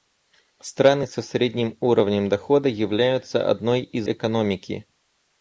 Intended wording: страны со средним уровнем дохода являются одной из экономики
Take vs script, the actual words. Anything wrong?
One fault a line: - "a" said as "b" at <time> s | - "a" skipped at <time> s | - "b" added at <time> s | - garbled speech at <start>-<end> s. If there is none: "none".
none